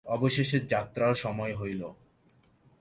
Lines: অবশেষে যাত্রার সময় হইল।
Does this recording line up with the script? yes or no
yes